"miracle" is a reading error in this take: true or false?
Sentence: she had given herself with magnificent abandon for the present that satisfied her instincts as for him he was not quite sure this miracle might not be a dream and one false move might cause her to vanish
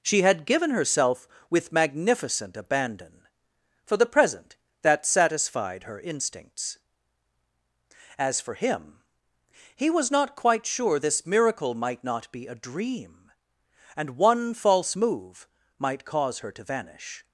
false